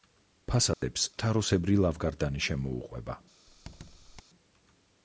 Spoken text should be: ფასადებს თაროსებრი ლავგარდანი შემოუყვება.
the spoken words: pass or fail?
pass